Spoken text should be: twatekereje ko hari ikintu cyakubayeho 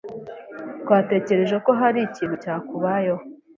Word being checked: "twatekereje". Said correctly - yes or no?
yes